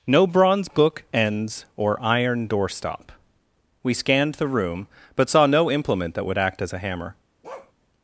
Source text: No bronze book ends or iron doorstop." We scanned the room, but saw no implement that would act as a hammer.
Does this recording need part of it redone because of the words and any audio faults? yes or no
yes